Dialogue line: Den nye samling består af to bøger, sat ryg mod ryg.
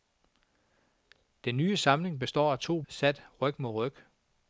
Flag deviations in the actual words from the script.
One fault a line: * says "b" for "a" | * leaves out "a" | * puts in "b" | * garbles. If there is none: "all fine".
* leaves out "bøger"